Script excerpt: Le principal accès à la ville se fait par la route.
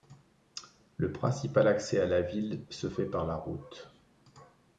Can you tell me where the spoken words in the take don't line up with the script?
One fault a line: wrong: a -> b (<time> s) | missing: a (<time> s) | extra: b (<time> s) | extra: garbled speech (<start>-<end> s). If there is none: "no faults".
no faults